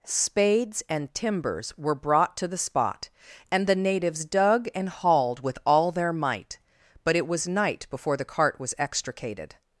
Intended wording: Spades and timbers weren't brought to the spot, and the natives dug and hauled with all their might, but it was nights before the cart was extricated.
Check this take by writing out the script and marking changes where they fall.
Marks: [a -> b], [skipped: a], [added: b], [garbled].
Spades and timbers [weren't -> were] brought to the spot, and the natives dug and hauled with all their might, but it was [nights -> night] before the cart was extricated.